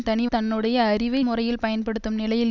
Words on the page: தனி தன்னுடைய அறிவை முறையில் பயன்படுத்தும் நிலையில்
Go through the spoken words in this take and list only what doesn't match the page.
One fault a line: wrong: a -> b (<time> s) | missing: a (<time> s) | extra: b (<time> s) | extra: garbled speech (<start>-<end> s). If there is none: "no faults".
no faults